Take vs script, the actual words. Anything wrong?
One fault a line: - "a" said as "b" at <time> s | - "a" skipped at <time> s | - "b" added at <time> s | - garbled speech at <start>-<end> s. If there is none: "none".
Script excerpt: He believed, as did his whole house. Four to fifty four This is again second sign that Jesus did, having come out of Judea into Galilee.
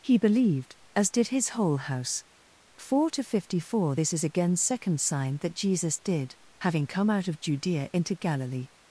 none